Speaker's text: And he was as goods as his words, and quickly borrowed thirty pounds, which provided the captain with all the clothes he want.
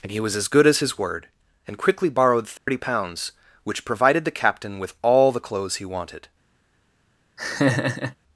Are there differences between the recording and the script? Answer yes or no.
yes